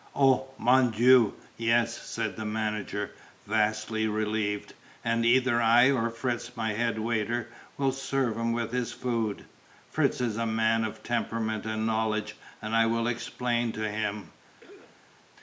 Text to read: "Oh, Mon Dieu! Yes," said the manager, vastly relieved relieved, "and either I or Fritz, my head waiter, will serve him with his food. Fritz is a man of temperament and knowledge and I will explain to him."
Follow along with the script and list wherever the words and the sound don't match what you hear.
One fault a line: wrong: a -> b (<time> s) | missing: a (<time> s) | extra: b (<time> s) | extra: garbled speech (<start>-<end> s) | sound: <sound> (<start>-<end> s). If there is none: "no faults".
missing: relieved (4.7 s)
sound: cough (14.6-15.1 s)